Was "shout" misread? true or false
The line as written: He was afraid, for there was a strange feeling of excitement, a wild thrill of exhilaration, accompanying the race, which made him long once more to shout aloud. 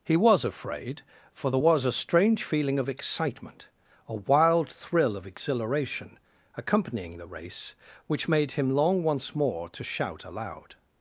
false